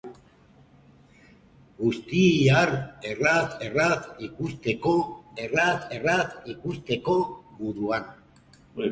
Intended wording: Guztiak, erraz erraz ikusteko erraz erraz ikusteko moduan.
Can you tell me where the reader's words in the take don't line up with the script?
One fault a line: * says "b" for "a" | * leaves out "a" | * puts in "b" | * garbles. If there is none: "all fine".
all fine